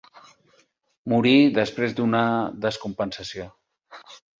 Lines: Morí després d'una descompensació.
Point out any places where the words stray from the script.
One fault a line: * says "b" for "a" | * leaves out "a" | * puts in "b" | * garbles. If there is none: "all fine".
all fine